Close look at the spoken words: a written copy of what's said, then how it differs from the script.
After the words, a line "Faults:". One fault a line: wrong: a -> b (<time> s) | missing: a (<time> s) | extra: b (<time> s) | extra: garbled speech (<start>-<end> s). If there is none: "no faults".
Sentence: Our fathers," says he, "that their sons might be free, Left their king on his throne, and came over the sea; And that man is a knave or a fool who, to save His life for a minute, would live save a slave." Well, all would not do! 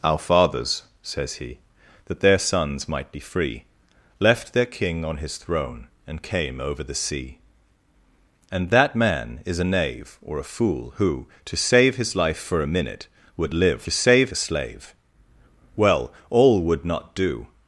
Our fathers," says he, "that their sons might be free, Left their king on his throne, and came over the sea; And that man is a knave or a fool who, to save His life for a minute, would live save a slave." Well, all would not do!
Faults:
no faults